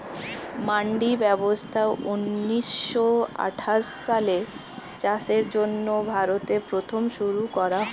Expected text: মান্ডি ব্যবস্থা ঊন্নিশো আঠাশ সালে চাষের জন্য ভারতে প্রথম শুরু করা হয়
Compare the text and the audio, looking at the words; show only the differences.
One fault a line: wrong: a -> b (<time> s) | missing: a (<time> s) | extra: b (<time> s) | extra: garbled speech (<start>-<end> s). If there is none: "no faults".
no faults